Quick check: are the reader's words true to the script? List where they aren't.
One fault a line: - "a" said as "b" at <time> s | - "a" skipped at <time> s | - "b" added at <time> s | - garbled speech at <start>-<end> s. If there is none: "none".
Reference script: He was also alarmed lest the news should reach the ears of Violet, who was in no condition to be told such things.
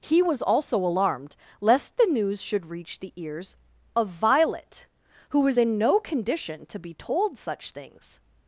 none